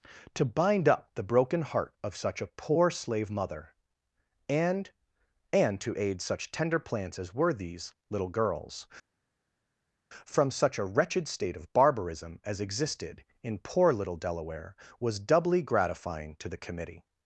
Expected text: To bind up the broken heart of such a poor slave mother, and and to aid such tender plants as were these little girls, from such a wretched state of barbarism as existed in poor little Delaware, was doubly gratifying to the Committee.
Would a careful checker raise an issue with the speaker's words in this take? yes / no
no